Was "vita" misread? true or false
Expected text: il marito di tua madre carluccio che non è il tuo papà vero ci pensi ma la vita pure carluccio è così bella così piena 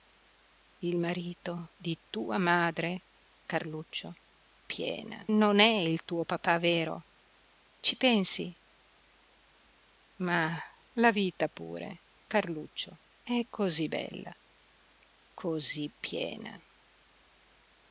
false